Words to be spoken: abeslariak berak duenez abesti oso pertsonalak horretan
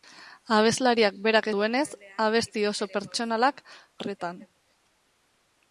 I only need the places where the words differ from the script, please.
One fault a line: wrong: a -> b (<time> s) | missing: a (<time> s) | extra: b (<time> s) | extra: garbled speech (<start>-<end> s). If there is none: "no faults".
no faults